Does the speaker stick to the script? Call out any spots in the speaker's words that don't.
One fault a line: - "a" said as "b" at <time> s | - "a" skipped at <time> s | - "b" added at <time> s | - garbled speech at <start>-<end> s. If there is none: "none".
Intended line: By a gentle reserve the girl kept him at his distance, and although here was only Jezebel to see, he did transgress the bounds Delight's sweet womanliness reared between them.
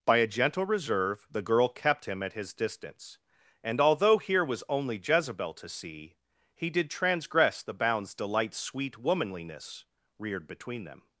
none